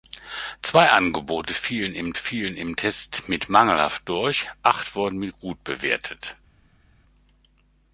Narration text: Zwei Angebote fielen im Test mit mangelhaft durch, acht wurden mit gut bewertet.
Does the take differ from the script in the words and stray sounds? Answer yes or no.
yes